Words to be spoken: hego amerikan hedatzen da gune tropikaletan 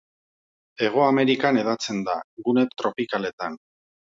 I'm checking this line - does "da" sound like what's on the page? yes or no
yes